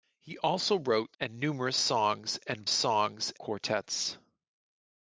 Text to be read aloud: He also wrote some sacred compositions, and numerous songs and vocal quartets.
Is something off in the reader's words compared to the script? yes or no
yes